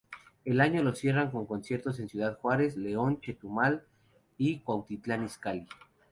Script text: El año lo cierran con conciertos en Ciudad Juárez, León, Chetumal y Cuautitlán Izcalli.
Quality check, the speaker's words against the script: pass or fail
pass